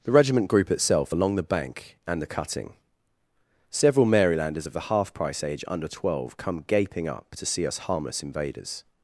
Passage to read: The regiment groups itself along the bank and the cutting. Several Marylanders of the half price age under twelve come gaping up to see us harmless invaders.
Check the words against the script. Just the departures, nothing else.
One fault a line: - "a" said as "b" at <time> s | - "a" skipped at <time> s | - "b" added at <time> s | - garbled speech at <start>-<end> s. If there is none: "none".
- "groups" said as "group" at 0.5 s